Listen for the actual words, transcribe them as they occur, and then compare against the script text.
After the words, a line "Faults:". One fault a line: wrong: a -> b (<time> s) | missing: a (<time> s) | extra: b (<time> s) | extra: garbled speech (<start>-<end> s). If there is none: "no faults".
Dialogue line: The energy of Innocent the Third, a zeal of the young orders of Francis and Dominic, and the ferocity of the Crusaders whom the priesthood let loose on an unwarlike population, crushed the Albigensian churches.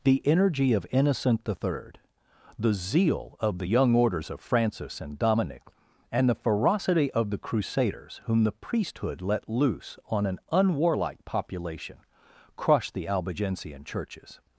The energy of Innocent the Third, the zeal of the young orders of Francis and Dominic, and the ferocity of the Crusaders whom the priesthood let loose on an unwarlike population, crushed the Albigensian churches.
Faults:
wrong: a -> the (2.6 s)